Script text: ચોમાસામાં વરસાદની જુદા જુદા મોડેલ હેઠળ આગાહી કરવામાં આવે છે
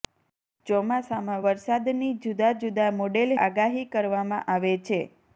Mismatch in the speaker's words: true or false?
true